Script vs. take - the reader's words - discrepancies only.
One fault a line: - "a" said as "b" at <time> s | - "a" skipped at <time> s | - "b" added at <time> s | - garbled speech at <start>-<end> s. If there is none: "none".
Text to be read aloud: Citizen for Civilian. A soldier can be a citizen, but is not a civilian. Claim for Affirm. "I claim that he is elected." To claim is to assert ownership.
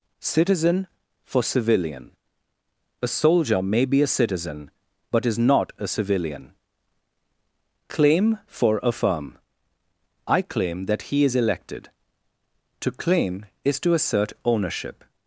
- "can" said as "may" at 3.6 s